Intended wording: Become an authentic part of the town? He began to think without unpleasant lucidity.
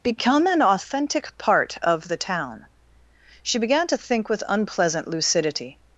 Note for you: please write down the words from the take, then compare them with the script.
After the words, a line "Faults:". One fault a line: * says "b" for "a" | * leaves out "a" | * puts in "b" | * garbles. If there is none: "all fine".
Become an authentic part of the town? She began to think with unpleasant lucidity.
Faults:
* says "She" for "He"
* says "with" for "without"